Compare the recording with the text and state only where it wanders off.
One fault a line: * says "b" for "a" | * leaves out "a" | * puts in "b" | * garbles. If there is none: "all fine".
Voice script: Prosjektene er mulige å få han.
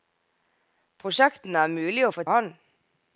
all fine